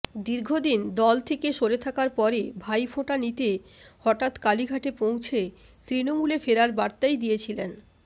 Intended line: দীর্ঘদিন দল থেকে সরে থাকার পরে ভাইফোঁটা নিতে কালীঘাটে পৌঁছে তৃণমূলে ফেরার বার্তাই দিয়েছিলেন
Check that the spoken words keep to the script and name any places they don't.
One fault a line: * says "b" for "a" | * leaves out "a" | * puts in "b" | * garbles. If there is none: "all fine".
* puts in "হঠাৎ"